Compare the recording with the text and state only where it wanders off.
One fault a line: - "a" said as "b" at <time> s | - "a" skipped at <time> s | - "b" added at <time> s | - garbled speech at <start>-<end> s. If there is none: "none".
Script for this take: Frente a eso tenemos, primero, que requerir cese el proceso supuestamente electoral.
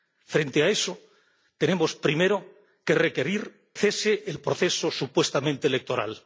none